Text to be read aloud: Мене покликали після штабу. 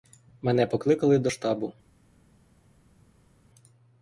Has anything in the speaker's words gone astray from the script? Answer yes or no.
yes